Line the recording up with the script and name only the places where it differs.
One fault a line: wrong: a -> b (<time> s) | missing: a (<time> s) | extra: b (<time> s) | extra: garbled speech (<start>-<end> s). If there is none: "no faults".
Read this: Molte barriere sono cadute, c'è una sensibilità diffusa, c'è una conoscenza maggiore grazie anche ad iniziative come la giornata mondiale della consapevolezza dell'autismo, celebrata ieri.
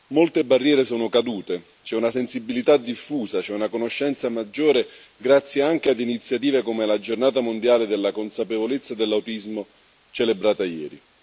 no faults